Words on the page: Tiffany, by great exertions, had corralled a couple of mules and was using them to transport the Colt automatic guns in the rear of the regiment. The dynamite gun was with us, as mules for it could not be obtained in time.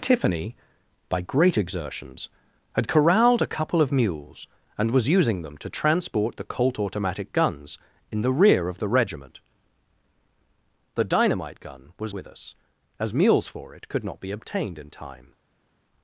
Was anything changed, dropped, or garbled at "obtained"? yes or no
no